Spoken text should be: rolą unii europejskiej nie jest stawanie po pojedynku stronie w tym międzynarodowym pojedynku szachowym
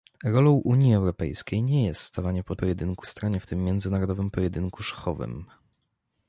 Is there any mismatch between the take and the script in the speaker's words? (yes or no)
no